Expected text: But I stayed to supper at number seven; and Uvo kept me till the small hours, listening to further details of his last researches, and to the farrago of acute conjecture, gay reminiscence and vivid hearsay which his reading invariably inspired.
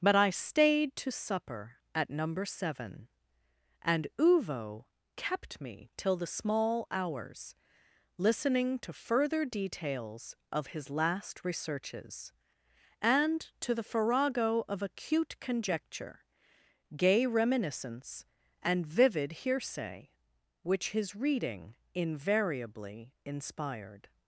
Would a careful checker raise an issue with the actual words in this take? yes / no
no